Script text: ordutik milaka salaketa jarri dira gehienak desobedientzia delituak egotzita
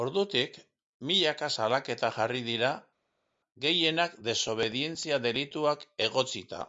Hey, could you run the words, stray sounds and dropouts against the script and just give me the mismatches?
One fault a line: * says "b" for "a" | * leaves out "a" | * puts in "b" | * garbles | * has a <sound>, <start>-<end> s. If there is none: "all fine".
all fine